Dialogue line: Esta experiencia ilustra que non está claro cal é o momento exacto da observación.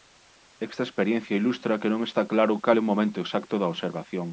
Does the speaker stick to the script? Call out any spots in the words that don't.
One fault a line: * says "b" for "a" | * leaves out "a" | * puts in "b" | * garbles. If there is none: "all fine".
all fine